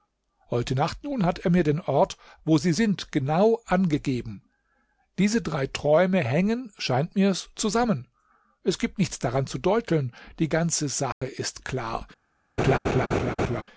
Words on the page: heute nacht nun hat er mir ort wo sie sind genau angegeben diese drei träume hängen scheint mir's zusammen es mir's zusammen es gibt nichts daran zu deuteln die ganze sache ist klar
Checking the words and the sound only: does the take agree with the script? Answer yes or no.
no